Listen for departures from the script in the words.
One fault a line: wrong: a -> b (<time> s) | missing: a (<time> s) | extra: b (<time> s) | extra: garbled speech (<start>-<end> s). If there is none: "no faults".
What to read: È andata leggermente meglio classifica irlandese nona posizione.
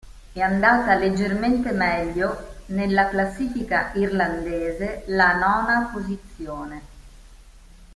extra: nella (2.7 s)
extra: la (5.1 s)